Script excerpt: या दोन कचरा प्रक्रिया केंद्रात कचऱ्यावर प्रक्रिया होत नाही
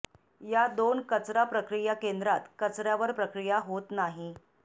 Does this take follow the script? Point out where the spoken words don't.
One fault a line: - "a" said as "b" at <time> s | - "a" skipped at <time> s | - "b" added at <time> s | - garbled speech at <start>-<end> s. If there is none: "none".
none